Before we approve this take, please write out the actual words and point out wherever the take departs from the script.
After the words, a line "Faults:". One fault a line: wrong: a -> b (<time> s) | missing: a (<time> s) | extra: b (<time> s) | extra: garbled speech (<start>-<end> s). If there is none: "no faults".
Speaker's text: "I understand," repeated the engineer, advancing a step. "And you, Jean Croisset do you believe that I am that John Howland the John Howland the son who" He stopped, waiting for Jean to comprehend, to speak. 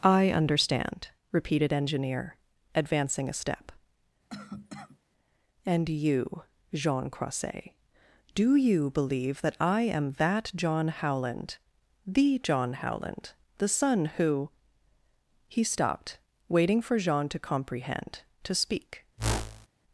"I understand," repeated engineer, advancing a step. "And you, Jean Croisset do you believe that I am that John Howland the John Howland the son who" He stopped, waiting for Jean to comprehend, to speak.
Faults:
missing: the (1.7 s)